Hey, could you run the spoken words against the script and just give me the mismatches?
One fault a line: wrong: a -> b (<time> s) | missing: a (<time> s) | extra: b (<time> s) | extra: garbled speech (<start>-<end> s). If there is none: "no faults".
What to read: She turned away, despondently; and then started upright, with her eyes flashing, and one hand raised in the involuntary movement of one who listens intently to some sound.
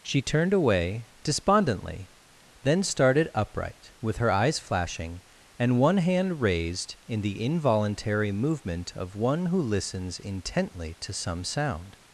missing: and (2.1 s)